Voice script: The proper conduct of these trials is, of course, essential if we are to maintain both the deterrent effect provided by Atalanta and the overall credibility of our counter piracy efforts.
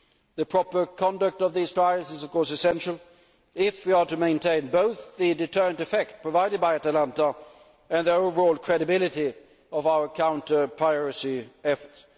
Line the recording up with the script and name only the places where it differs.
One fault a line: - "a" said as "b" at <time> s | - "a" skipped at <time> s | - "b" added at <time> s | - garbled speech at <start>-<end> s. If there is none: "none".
none